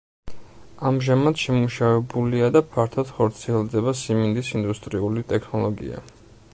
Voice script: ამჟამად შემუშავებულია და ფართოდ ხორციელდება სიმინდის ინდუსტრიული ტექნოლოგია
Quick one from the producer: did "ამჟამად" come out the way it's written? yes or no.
yes